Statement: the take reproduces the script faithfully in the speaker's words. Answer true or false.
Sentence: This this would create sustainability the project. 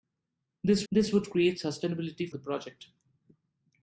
true